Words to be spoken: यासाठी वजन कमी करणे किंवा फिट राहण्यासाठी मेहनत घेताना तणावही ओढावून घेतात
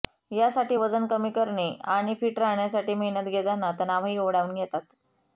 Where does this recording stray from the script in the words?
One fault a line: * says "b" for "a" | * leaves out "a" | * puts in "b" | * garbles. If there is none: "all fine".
* says "आणि" for "किंवा"